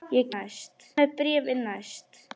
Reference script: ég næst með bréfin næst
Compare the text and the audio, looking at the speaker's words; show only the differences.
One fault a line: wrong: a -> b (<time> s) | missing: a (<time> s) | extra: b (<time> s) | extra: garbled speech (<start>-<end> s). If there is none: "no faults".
no faults